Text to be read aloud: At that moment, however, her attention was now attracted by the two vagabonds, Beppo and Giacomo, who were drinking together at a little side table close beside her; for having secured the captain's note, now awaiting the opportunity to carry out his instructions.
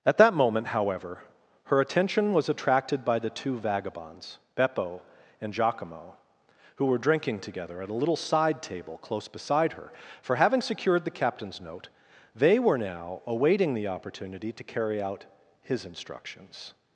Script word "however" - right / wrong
right